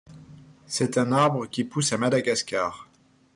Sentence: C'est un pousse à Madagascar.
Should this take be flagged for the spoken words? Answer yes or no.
yes